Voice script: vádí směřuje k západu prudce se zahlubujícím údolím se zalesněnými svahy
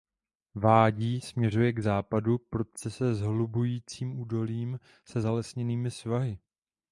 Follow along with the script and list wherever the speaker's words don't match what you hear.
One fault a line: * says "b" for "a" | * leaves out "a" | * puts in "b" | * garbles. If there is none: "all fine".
all fine